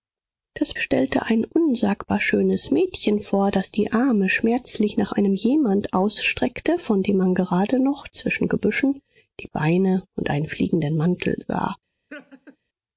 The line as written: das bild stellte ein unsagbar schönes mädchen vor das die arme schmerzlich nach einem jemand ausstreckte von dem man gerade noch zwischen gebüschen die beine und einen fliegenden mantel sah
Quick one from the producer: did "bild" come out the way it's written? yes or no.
no